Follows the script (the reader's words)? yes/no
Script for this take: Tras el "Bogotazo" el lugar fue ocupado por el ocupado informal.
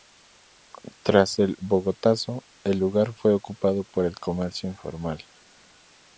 no